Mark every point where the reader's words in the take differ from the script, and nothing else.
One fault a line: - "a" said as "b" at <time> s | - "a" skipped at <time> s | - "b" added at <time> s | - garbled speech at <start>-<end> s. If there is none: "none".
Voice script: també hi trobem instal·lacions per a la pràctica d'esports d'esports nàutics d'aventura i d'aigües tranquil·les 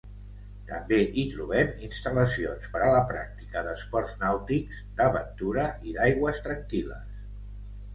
- "d'esports" skipped at 4.2 s